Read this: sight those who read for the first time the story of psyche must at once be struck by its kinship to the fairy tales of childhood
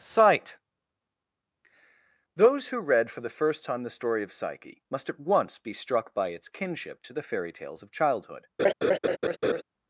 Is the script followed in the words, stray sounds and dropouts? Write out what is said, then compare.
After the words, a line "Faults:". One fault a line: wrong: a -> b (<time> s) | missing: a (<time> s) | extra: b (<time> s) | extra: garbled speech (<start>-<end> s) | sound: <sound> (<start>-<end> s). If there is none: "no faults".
sight those who read for the first time the story of psyche must at once be struck by its kinship to the fairy tales of childhood
Faults:
sound: laugh (8.6-9.6 s)